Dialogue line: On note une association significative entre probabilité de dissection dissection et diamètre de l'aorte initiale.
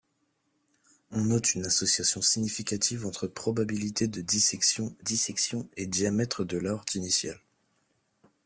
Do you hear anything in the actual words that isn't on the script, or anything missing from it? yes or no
no